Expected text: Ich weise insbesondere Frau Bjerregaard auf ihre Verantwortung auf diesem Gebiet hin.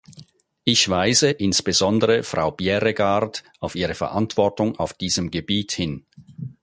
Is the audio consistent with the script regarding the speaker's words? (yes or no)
yes